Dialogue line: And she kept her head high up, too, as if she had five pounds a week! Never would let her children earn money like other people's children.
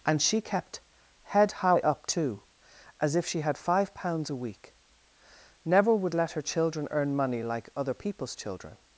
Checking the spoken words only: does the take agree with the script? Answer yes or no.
no